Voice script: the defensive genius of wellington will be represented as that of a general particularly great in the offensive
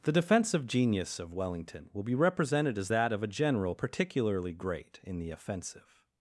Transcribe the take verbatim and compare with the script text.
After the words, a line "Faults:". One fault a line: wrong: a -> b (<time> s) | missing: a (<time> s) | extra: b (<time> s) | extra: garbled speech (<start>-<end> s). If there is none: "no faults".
the defensive genius of wellington will be represented as that of a general particularly great in the offensive
Faults:
no faults